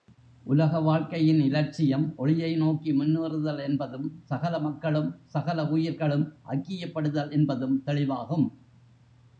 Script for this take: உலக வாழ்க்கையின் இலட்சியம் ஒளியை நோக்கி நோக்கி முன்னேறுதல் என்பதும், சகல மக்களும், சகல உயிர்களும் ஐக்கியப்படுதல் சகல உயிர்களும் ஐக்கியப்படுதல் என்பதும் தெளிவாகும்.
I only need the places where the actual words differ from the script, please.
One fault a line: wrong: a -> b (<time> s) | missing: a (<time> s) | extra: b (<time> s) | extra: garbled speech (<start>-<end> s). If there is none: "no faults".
missing: நோக்கி (2.9 s)
missing: சகல உயிர்களும் ஐக்கியப்படுதல் (7.3 s)